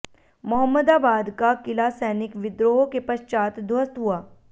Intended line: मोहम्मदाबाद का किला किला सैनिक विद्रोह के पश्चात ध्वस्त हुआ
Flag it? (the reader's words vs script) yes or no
yes